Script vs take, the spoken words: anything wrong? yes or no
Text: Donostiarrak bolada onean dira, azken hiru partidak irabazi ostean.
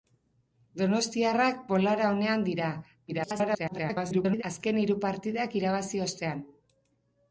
yes